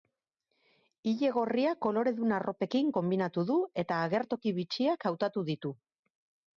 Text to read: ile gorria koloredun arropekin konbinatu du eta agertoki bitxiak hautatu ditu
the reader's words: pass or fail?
pass